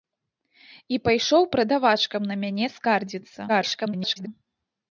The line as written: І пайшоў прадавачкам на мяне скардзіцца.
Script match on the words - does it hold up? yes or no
no